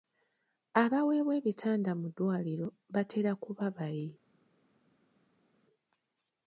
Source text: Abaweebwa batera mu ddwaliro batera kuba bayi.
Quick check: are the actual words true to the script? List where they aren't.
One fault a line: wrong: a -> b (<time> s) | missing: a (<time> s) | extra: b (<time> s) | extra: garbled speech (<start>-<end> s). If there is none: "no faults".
wrong: batera -> ebitanda (1.4 s)